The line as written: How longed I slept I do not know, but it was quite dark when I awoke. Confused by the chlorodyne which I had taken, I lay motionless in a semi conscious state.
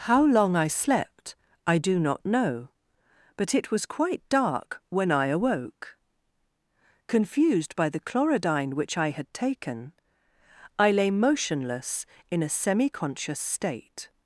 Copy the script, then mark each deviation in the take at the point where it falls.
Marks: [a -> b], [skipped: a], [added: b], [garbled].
How [longed -> long] I slept I do not know, but it was quite dark when I awoke. Confused by the chlorodyne which I had taken, I lay motionless in a semi conscious state.